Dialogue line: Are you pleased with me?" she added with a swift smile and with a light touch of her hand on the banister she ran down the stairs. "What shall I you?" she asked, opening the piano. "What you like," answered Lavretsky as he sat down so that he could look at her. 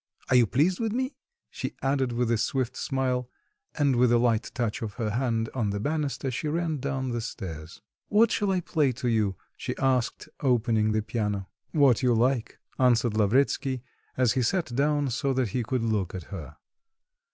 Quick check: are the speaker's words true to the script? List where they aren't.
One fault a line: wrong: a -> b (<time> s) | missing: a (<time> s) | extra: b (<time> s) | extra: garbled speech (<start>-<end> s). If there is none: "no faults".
extra: play to (8.6 s)